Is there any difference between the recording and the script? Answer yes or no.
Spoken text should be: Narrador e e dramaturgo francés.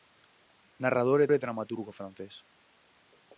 no